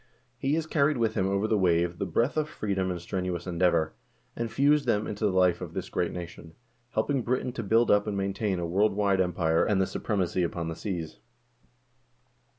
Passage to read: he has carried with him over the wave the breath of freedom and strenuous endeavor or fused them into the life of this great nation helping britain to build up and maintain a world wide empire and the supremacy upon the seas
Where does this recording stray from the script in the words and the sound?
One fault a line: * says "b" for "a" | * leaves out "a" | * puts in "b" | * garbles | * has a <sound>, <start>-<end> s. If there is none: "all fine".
* says "and" for "or"